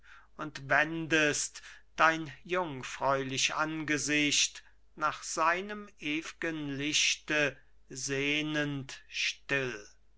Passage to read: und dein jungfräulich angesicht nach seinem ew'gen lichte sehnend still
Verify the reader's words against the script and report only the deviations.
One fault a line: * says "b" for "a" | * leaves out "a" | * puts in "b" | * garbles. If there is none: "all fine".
* puts in "wendest"